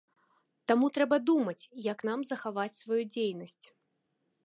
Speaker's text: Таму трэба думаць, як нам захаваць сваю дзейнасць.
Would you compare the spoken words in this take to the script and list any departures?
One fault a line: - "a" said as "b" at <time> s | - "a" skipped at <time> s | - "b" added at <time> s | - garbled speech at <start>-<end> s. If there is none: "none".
none